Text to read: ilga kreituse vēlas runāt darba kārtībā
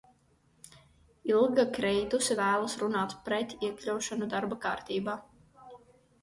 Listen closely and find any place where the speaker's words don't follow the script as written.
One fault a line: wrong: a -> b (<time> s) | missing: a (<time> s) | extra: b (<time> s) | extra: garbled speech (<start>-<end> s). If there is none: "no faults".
extra: pret iekļaušanu (3.3 s)